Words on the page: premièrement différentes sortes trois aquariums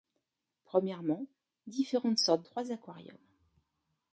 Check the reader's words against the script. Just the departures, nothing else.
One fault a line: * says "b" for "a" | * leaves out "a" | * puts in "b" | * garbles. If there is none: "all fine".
all fine